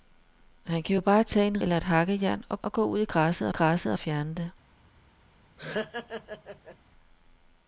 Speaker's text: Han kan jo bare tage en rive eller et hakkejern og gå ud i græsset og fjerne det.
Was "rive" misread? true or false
true